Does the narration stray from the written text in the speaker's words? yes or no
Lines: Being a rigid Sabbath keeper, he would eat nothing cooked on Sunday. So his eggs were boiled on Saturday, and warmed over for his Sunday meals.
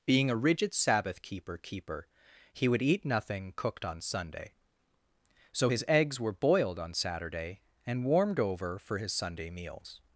yes